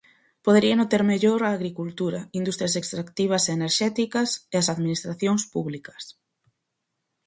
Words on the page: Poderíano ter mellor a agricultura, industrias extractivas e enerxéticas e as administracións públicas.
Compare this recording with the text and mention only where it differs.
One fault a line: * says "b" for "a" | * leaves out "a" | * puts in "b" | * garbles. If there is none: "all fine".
all fine